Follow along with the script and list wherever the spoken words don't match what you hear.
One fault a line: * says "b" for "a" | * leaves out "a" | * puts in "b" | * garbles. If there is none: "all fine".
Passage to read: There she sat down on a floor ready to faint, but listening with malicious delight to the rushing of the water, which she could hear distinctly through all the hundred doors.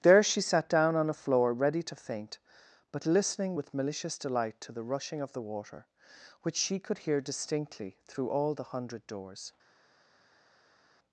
all fine